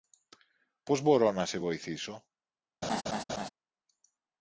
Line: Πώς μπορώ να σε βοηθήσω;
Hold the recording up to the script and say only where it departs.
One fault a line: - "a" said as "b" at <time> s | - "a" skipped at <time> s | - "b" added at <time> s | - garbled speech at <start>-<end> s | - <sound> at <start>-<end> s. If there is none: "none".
- laugh at 2.8-3.5 s